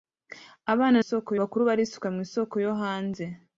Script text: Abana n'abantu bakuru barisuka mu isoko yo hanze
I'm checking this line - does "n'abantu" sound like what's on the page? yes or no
no